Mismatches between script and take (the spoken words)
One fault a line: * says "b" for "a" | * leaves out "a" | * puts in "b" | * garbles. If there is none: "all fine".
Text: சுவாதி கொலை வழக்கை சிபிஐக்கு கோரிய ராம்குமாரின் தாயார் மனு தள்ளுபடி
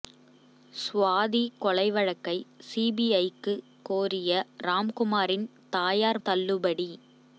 * leaves out "மனு"